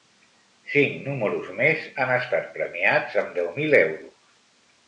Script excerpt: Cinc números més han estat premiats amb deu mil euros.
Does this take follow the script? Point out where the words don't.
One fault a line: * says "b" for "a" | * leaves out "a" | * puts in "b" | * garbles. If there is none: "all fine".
all fine